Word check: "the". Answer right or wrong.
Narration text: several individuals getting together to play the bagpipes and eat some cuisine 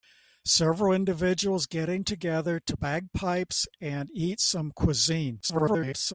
wrong